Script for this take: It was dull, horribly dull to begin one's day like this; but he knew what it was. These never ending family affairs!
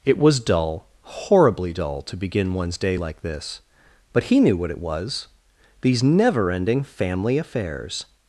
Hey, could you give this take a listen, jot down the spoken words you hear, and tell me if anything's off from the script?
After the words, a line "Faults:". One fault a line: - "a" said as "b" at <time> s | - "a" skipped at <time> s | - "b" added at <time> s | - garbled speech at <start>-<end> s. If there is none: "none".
It was dull, horribly dull to begin one's day like this; but he knew what it was. These never ending family affairs!
Faults:
none